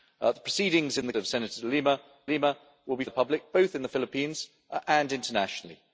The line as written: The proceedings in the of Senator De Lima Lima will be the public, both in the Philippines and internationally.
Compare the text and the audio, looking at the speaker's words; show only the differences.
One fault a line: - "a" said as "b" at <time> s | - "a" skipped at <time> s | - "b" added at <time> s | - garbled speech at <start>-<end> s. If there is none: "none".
none